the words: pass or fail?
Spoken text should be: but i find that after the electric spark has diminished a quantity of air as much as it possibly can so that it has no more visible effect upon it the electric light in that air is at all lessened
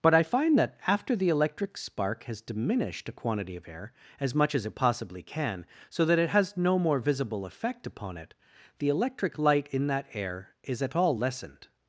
pass